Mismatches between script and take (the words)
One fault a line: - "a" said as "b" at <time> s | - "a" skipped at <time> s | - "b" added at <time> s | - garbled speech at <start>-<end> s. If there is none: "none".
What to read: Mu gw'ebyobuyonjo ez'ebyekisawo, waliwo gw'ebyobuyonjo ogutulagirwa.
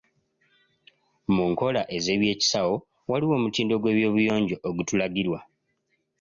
- "gw'ebyobuyonjo" said as "nkola" at 1.5 s
- "omutindo" added at 3.4 s